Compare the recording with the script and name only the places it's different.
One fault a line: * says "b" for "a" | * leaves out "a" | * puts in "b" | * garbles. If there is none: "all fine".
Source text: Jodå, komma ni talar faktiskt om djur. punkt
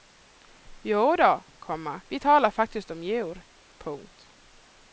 * says "vi" for "ni"